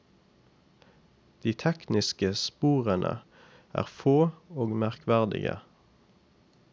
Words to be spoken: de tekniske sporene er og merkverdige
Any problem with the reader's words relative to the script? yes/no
yes